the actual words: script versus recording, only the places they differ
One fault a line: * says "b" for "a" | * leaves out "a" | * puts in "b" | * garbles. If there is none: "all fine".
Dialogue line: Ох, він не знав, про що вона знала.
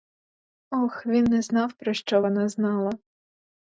all fine